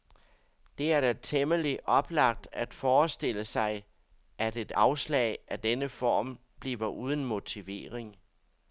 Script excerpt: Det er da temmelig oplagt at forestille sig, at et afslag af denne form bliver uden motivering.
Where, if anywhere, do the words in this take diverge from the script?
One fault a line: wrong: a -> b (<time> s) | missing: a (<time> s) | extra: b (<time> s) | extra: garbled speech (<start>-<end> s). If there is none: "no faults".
no faults